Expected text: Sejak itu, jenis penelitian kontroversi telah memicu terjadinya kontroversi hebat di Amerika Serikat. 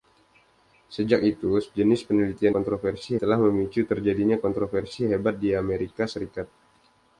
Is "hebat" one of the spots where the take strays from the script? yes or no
no